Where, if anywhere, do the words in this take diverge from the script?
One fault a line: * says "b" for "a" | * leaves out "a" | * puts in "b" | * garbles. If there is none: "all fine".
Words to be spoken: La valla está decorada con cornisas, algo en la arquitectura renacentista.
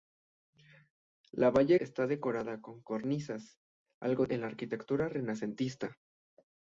all fine